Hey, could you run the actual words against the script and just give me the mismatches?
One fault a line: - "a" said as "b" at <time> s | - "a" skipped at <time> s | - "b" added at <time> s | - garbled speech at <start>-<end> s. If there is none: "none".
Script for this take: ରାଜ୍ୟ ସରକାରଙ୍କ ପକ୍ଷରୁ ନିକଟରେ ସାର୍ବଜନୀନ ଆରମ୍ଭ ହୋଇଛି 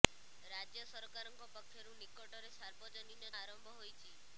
none